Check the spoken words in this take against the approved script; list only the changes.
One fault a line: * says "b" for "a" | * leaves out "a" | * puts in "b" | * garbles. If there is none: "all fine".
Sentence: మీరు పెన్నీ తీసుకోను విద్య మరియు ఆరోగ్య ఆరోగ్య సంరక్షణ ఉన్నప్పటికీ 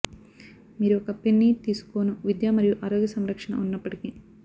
* puts in "ఒక"
* leaves out "ఆరోగ్య"